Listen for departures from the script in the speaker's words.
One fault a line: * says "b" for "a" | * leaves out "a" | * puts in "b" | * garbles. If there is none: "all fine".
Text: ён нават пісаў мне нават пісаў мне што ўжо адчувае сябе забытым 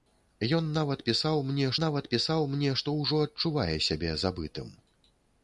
all fine